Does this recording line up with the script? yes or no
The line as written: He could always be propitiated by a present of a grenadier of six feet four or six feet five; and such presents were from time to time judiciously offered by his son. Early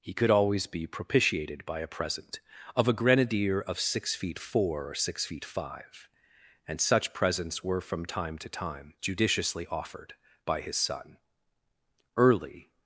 yes